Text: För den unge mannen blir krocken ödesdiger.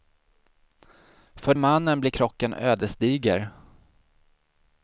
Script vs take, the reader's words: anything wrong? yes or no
yes